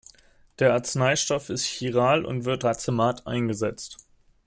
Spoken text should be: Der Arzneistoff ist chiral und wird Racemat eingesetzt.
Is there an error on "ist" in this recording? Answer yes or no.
no